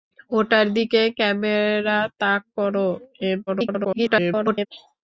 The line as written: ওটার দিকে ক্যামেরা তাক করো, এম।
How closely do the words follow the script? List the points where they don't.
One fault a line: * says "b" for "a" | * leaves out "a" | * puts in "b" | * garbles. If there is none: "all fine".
* garbles